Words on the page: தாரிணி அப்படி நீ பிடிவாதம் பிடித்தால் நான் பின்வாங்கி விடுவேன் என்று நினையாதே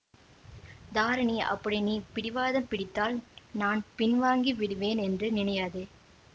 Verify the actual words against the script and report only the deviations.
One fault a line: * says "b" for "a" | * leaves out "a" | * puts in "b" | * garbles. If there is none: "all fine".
all fine